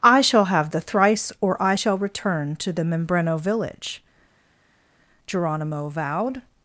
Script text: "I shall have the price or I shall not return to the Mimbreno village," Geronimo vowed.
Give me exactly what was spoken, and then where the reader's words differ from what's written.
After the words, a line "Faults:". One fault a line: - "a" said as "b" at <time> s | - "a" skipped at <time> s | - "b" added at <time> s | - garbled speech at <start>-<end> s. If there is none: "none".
"I shall have the thrice or I shall return to the Mimbreno village," Geronimo vowed.
Faults:
- "price" said as "thrice" at 0.8 s
- "not" skipped at 2.0 s